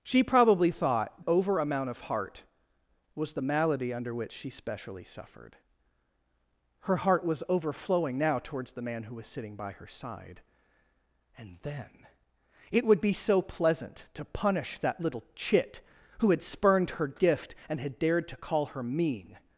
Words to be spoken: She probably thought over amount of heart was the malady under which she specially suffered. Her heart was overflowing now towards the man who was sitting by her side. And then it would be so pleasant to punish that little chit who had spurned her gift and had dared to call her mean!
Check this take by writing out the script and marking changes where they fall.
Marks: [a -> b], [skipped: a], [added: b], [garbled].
She probably thought over amount of heart was the malady under which she specially suffered. Her heart was overflowing now towards the man who was sitting by her side. And then it would be so pleasant to punish that little chit who had spurned her gift and had dared to call her mean!